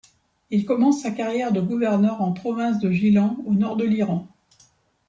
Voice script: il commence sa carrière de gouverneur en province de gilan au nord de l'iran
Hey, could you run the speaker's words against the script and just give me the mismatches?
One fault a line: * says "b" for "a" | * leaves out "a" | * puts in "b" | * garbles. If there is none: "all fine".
all fine